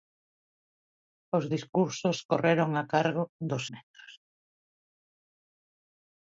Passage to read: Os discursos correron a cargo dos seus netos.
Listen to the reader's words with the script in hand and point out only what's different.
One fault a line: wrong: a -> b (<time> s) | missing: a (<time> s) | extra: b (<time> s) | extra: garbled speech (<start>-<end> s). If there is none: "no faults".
missing: seus (3.6 s)